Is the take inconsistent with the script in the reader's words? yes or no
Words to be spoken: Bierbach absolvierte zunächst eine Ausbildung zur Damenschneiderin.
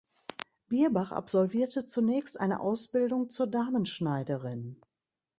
no